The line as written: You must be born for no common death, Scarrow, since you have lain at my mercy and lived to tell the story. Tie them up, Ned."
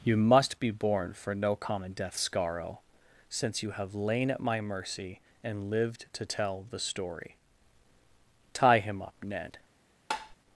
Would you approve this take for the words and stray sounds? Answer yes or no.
no